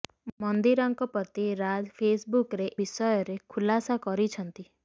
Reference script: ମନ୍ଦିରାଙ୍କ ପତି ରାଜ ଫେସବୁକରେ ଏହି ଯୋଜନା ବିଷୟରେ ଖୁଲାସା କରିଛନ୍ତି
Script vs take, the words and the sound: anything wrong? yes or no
yes